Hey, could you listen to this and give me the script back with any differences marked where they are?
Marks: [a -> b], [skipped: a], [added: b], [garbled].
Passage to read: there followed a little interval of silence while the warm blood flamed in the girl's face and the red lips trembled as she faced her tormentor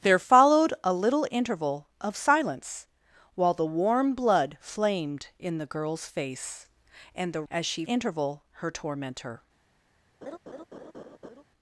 there followed a little interval of silence while the warm blood flamed in the girl's face and the [skipped: red lips trembled] as she [faced -> interval] her tormentor